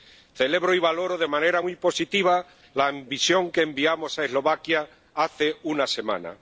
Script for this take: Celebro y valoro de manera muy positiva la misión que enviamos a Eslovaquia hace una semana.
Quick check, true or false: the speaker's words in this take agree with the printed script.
true